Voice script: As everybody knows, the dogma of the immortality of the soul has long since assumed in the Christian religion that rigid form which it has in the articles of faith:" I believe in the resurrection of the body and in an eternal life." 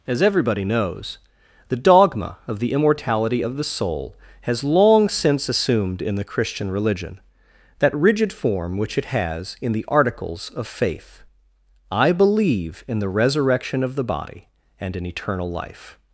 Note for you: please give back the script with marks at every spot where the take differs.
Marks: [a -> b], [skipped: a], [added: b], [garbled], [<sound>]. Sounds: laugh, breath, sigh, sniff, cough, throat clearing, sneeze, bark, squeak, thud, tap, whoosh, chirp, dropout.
As everybody knows, the dogma of the immortality of the soul has long since assumed in the Christian religion that rigid form which it has in the articles of faith:" I believe in the resurrection of the body and in [skipped: an] eternal life."